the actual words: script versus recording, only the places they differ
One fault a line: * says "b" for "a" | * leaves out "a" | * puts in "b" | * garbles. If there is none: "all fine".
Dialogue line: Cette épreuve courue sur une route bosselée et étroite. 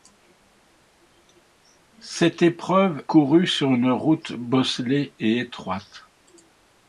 all fine